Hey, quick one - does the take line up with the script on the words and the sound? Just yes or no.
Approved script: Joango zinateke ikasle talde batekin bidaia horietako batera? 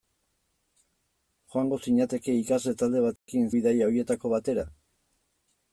no